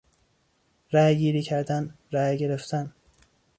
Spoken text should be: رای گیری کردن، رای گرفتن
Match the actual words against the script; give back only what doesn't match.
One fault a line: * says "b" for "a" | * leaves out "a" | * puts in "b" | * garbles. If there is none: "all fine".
all fine